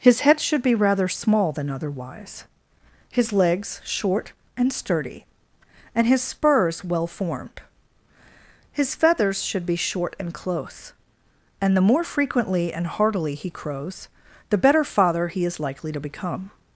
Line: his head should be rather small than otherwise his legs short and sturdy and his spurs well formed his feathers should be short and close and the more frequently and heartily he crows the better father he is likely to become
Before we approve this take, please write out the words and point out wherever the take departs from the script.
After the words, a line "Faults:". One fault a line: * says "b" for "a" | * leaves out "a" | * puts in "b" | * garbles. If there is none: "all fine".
his head should be rather small than otherwise his legs short and sturdy and his spurs well formed his feathers should be short and close and the more frequently and heartily he crows the better father he is likely to become
Faults:
all fine